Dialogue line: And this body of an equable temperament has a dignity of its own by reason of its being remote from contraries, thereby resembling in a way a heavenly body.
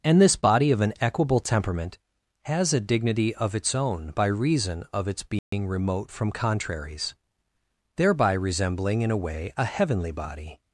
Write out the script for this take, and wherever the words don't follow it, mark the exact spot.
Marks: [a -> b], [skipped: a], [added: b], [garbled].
And this body of an equable temperament has a dignity of its own by reason of its being remote from contraries, thereby resembling in a way a heavenly body.